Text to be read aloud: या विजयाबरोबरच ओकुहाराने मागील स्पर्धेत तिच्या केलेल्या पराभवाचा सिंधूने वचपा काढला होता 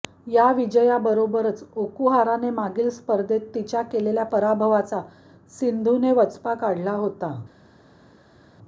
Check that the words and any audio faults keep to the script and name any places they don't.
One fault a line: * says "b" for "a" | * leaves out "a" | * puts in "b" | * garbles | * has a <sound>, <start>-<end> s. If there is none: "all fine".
all fine